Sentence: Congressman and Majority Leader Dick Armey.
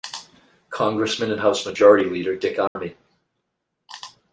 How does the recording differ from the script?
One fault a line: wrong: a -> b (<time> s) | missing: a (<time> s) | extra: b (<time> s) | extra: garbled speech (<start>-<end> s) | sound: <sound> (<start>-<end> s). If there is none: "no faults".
extra: House (1.4 s)
sound: dropout (2.7-2.8 s)